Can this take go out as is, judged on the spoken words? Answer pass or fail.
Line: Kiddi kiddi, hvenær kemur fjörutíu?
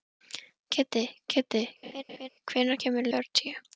pass